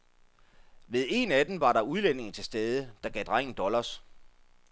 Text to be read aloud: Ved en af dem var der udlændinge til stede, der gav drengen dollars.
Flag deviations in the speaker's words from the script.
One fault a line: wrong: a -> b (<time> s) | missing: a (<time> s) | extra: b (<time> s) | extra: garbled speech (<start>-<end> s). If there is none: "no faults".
no faults